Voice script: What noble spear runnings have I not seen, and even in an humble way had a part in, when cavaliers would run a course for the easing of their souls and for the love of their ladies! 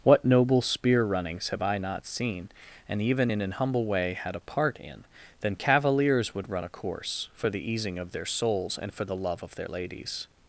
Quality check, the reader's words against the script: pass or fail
fail